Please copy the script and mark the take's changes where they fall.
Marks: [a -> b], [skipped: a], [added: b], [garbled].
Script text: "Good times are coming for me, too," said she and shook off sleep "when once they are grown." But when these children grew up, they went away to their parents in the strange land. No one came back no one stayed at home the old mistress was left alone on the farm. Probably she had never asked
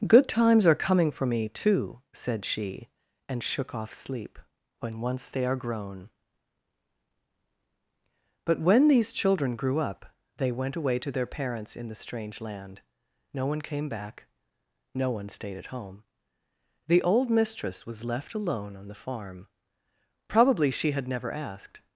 "Good times are coming for me, too," said she and shook off sleep "when once they are grown." But when these children grew up, they went away to their parents in the strange land. No one came back no one stayed at home the old mistress was left alone on the farm. Probably she had never asked